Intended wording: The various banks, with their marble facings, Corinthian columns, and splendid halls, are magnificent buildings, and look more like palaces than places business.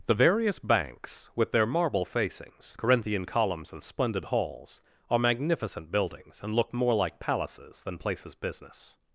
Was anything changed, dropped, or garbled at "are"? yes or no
no